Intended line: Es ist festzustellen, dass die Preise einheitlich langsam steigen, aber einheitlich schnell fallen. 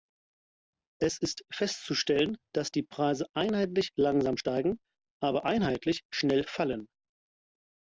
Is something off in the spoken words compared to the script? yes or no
no